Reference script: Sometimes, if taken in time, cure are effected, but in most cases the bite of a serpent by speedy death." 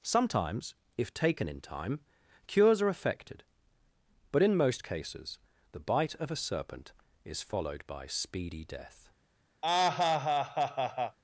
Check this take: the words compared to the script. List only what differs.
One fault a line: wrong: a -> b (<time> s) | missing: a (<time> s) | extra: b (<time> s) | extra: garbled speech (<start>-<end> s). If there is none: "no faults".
wrong: cure -> cures (2.5 s)
extra: is followed (7.2 s)